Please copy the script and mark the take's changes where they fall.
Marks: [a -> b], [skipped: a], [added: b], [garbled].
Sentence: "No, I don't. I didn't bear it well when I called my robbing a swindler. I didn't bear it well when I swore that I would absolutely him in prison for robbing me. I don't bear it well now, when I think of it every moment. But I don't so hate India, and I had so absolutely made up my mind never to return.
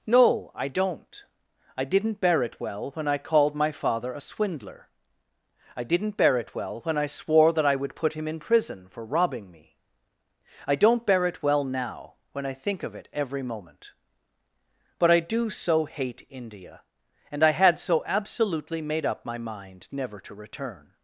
"No, I don't. I didn't bear it well when I called my [robbing -> father] a swindler. I didn't bear it well when I swore that I would [absolutely -> put] him in prison for robbing me. I don't bear it well now, when I think of it every moment. But I [don't -> do] so hate India, and I had so absolutely made up my mind never to return.